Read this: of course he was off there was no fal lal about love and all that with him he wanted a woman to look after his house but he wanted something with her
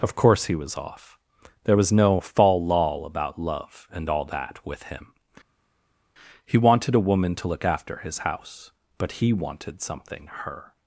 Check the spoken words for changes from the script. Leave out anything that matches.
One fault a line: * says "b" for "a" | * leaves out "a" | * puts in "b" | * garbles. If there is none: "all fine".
* leaves out "with"